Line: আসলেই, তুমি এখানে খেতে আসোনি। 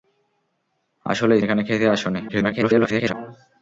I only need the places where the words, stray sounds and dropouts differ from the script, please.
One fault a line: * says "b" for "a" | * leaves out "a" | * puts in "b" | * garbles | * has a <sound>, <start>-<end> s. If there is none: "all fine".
* leaves out "তুমি"
* garbles